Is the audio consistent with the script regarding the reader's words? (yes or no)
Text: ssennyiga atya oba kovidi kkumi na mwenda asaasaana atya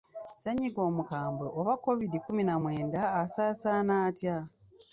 no